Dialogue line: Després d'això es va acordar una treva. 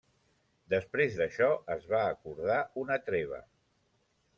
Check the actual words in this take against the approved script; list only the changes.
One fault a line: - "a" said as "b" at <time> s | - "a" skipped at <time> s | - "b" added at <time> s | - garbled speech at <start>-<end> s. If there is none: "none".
none